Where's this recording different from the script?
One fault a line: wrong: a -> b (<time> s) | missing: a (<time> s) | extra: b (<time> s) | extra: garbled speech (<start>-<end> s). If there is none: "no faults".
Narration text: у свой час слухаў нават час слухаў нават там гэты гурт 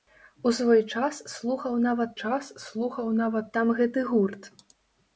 no faults